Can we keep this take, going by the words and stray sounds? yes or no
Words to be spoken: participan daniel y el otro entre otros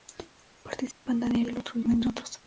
no